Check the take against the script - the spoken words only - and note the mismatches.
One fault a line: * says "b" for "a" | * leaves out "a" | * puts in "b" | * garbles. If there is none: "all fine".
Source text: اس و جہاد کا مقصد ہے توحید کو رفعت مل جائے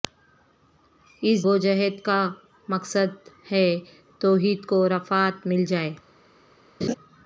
all fine